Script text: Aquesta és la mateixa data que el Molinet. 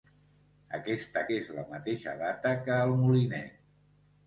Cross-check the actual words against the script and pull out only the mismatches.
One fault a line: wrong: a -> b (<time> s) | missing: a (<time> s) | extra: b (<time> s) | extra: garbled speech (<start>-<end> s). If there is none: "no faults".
no faults